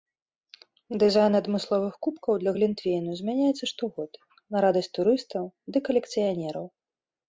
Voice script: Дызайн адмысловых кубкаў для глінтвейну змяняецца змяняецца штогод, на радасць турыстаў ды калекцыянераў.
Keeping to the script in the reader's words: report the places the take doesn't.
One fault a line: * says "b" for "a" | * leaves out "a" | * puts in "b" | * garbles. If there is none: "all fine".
* leaves out "змяняецца"